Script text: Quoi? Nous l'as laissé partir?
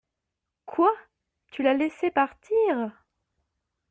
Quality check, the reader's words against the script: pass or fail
fail